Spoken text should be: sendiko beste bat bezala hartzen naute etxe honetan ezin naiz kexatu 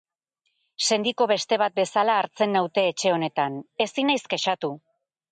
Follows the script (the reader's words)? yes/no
yes